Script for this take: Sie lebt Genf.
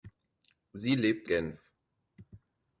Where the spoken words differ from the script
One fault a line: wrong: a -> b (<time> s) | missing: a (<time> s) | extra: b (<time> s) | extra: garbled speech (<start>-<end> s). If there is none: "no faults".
no faults